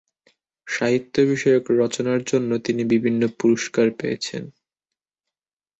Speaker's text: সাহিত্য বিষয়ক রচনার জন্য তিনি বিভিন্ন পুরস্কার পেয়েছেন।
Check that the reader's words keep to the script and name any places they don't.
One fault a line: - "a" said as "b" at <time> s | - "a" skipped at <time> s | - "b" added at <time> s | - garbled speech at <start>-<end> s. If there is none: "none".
none